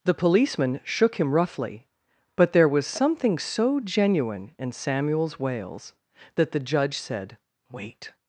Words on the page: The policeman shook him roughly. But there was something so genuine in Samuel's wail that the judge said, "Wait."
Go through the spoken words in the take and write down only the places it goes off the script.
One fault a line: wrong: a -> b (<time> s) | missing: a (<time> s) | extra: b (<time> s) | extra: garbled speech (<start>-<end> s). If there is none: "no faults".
wrong: wail -> wails (5.4 s)